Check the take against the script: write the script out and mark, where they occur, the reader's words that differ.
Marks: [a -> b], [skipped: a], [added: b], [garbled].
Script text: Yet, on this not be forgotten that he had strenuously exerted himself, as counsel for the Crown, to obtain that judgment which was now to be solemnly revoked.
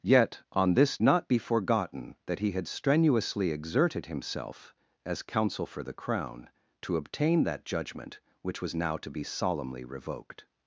Yet, on this not be forgotten that he had strenuously exerted himself, as counsel for the Crown, to obtain that judgment which was now to be solemnly revoked.